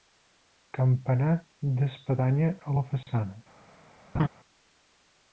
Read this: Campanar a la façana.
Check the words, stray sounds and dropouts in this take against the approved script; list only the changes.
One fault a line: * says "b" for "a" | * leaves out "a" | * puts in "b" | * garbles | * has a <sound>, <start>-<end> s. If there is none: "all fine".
* puts in "d'espadanya"
* has a laugh, 4.1-4.3 s